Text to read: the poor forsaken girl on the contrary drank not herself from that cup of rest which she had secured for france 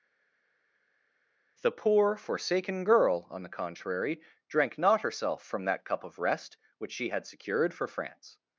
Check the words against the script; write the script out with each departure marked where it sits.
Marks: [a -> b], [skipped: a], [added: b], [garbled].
the poor forsaken girl on the contrary drank not herself from that cup of rest which she had secured for france